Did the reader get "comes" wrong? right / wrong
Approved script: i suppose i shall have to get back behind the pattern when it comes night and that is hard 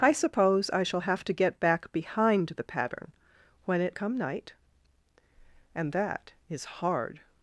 wrong